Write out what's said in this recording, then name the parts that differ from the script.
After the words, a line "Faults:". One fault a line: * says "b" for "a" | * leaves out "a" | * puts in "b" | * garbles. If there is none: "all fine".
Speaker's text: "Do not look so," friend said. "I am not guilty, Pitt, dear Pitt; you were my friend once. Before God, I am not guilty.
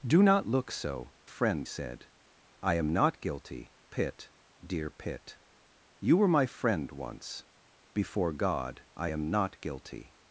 "Do not look so," friend said. "I am not guilty, Pitt, dear Pitt; you were my friend once. Before God, I am not guilty.
Faults:
all fine